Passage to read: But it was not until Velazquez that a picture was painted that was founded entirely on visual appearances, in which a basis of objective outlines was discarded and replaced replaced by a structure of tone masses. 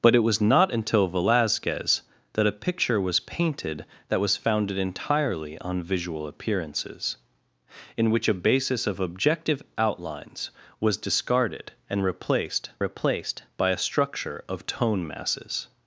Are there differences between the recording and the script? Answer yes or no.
no